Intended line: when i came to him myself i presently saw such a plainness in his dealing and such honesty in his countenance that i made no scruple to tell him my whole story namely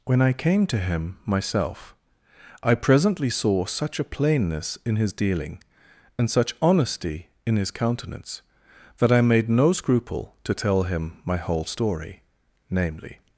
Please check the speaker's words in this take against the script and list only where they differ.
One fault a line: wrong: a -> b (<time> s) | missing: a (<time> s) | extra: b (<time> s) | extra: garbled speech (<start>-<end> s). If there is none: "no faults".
no faults